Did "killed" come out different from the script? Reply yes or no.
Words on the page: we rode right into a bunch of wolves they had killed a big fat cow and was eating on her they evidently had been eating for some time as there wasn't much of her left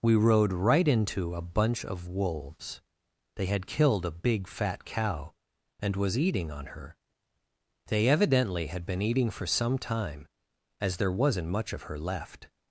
no